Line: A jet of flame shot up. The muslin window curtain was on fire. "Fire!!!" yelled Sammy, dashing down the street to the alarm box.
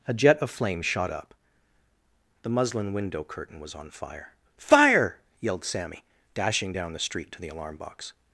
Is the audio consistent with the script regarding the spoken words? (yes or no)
yes